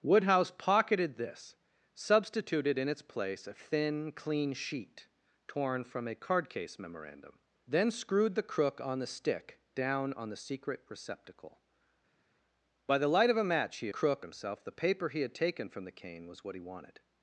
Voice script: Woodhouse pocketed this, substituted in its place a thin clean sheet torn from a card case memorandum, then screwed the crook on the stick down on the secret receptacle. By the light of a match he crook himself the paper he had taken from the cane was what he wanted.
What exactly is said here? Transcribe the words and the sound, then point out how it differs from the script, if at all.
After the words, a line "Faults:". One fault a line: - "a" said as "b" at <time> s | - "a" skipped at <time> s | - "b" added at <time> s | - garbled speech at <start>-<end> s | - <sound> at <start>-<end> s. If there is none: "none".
Woodhouse pocketed this, substituted in its place a thin clean sheet torn from a card case memorandum, then screwed the crook on the stick down on the secret receptacle. By the light of a match he crook himself the paper he had taken from the cane was what he wanted.
Faults:
none